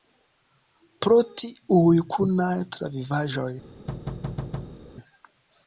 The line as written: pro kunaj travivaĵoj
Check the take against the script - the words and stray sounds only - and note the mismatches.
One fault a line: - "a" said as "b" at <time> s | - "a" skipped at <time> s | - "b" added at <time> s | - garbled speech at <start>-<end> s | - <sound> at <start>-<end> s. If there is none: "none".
- "tiuj" added at 1.4 s
- thud at 3.9-4.8 s